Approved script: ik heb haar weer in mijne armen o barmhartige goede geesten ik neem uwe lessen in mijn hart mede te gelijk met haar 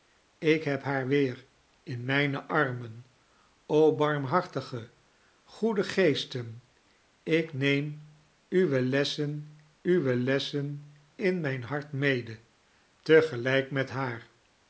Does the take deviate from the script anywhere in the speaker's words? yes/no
yes